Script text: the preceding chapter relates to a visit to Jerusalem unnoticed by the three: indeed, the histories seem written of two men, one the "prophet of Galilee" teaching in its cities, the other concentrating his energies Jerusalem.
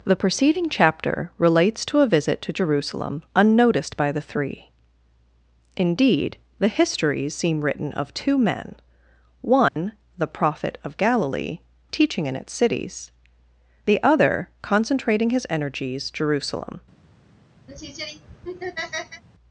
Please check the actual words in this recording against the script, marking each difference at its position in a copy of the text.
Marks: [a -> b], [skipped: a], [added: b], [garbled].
the preceding chapter relates to a visit to Jerusalem unnoticed by the three: indeed, the histories seem written of two men, one the "prophet of Galilee" teaching in its cities, the other concentrating his energies Jerusalem.